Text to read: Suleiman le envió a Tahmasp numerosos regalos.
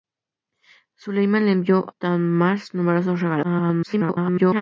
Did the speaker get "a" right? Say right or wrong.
wrong